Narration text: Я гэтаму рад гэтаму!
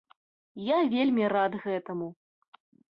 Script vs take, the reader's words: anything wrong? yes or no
yes